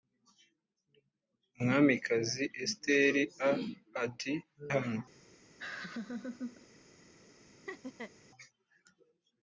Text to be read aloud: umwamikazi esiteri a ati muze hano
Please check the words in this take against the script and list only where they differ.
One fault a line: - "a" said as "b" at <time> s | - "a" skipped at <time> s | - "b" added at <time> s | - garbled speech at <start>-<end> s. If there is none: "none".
- "muze" skipped at 4.3 s